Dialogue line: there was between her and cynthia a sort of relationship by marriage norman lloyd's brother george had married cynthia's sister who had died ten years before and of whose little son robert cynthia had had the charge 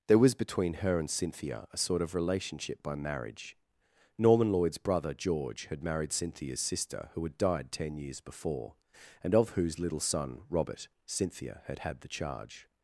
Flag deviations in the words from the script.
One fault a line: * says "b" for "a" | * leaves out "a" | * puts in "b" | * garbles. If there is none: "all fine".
all fine